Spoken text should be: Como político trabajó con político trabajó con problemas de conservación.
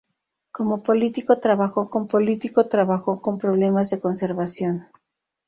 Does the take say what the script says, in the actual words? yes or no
yes